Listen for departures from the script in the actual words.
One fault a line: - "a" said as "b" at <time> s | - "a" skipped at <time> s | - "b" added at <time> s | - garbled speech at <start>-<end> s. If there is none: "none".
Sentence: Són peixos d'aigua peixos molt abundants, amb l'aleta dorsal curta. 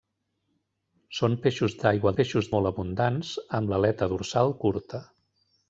none